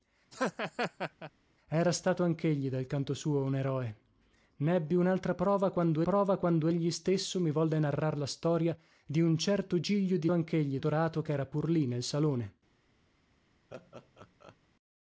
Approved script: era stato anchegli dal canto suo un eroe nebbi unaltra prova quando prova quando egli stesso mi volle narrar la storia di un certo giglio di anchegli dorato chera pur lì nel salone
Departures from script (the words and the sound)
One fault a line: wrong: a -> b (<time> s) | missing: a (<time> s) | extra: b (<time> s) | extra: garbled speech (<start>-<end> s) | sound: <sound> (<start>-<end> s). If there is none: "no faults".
sound: laugh (0.3-1.3 s)
sound: laugh (13.7-14.6 s)